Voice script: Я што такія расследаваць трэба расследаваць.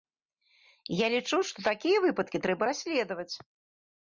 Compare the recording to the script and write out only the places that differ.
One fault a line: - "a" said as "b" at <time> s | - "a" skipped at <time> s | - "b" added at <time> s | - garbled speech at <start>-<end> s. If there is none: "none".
- "лічу" added at 1.1 s
- "расследаваць" said as "выпадкі" at 2.1 s